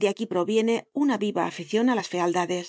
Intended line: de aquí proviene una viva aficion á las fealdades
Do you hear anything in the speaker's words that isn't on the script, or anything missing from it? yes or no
no